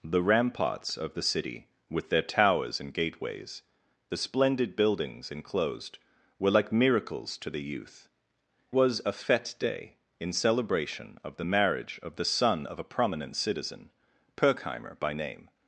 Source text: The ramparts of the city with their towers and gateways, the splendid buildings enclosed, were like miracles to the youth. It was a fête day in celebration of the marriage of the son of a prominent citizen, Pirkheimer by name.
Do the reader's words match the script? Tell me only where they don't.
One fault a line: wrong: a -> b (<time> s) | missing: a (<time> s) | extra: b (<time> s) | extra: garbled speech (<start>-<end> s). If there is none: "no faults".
missing: It (8.1 s)